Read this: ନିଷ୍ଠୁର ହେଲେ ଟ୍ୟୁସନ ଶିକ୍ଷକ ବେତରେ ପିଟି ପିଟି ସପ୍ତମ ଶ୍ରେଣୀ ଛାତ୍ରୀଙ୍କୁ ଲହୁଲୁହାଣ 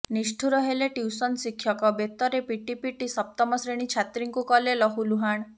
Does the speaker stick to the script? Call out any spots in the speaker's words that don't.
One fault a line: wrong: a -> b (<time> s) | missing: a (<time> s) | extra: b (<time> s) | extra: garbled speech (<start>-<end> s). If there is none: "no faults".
extra: କଲେ (4.5 s)